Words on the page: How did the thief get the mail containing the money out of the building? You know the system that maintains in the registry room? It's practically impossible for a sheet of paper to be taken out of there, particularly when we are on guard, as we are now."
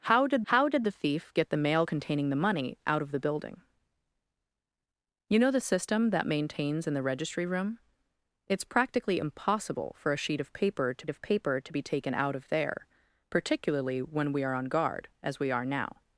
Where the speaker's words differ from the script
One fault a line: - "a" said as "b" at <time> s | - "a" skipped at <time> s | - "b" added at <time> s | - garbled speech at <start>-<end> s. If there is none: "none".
- "how did" added at 0.5 s
- "of paper to" added at 11.1 s